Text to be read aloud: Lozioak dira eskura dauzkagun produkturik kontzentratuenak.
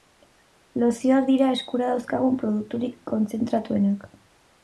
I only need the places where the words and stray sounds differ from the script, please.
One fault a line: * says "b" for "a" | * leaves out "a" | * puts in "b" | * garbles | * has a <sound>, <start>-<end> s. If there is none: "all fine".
all fine